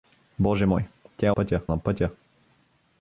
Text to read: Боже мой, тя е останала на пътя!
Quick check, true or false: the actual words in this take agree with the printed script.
false